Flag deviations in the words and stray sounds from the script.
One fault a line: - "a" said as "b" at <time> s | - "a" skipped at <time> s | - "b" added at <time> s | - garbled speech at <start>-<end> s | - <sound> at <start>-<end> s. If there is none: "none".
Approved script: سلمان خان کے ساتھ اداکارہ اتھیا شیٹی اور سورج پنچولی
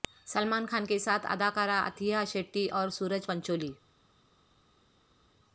none